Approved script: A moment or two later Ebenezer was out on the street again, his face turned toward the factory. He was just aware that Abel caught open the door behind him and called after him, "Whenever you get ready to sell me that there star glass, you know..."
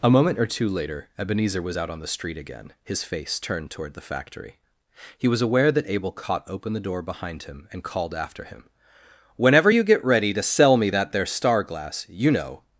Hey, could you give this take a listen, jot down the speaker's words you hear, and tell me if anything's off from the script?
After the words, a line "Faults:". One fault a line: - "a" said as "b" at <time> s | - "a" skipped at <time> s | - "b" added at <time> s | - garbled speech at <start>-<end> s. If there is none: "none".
A moment or two later Ebenezer was out on the street again, his face turned toward the factory. He was aware that Abel caught open the door behind him and called after him, "Whenever you get ready to sell me that there star glass, you know..."
Faults:
- "just" skipped at 5.4 s